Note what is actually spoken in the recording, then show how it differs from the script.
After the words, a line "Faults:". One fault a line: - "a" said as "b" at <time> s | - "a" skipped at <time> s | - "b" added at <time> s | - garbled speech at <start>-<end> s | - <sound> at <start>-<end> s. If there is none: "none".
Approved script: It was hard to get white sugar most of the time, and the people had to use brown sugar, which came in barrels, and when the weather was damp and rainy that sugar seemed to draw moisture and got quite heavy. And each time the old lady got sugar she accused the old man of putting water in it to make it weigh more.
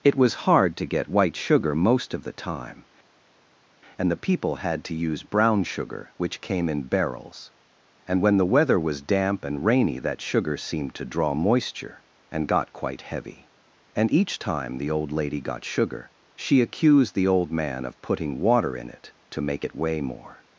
It was hard to get white sugar most of the time, and the people had to use brown sugar, which came in barrels, and when the weather was damp and rainy that sugar seemed to draw moisture and got quite heavy. And each time the old lady got sugar she accused the old man of putting water in it to make it weigh more.
Faults:
none